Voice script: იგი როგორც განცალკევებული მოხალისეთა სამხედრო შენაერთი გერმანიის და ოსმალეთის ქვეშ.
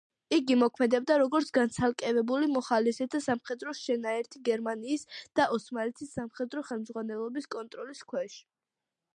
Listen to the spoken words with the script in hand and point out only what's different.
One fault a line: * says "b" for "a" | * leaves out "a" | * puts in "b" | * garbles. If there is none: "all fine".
* puts in "მოქმედებდა"
* puts in "სამხედრო ხელმძღვანელობის კონტროლის"